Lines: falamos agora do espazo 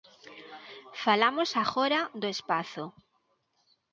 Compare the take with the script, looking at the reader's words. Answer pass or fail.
pass